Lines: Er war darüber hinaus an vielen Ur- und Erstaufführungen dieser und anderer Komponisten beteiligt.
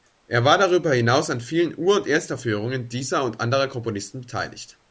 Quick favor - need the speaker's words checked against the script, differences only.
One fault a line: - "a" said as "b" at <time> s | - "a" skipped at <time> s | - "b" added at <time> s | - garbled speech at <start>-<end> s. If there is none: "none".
none